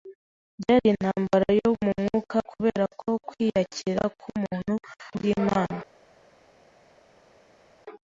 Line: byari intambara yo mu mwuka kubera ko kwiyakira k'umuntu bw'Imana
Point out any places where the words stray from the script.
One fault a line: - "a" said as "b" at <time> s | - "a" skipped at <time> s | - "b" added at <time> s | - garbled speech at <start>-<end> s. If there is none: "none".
none